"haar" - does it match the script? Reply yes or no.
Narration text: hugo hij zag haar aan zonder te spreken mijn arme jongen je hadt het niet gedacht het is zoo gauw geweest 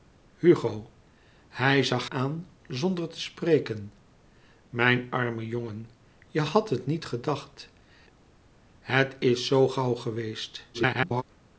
no